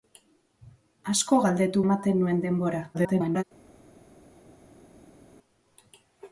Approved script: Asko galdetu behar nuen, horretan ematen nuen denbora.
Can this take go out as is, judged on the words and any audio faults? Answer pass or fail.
fail